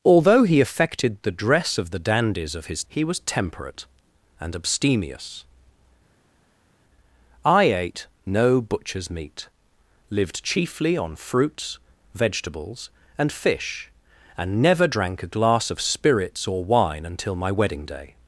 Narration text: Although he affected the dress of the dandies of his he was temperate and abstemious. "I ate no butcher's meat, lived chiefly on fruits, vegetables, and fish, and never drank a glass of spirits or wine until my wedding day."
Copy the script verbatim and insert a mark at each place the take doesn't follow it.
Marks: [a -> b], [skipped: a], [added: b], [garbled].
Although he affected the dress of the dandies of his he was temperate and abstemious. "I ate no butcher's meat, lived chiefly on fruits, vegetables, and fish, and never drank a glass of spirits or wine until my wedding day."